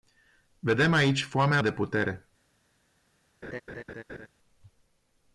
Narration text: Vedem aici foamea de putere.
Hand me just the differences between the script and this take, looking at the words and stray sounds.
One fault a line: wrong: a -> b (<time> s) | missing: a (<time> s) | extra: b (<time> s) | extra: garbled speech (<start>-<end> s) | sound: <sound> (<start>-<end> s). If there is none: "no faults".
sound: laugh (3.4-4.3 s)